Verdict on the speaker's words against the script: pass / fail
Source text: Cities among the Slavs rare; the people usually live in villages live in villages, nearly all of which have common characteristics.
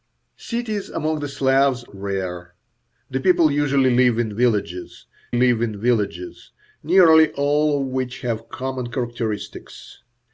pass